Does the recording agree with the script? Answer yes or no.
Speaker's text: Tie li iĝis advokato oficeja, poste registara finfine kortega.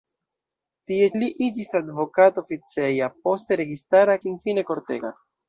yes